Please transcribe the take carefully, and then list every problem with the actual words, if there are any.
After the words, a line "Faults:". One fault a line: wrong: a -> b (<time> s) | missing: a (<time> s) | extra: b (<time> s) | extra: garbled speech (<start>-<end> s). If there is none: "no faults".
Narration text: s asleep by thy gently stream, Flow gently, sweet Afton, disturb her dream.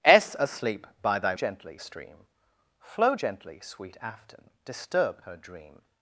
s asleep by thy gently stream, Flow gently, sweet Afton, disturb her dream.
Faults:
no faults